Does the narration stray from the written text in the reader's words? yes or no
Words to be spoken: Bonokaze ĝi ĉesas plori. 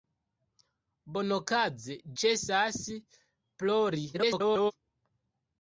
yes